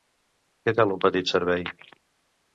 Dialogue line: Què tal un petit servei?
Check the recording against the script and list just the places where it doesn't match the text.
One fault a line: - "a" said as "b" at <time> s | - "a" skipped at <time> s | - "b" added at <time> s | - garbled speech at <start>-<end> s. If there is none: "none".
none